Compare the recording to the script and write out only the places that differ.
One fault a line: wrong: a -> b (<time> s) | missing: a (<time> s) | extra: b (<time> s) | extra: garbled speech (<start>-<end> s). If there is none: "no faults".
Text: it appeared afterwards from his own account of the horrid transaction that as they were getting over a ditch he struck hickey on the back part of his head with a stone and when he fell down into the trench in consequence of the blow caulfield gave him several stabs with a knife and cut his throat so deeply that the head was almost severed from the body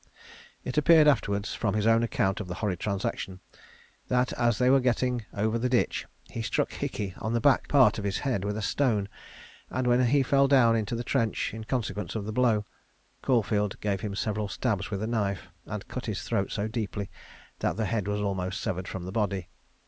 wrong: a -> the (5.6 s)